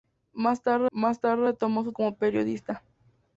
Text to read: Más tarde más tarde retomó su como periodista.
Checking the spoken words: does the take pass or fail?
pass